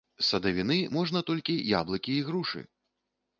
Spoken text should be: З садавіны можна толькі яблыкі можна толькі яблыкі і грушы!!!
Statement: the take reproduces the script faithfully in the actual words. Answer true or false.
false